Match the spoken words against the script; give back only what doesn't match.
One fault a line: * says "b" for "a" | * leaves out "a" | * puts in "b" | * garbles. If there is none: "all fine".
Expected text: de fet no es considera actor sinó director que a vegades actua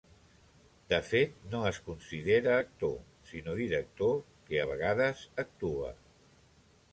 all fine